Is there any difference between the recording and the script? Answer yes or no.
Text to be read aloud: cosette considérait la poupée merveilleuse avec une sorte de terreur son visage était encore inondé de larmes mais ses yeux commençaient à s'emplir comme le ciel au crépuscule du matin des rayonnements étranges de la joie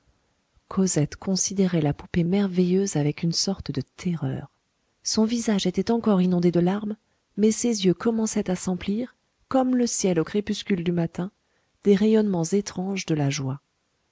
no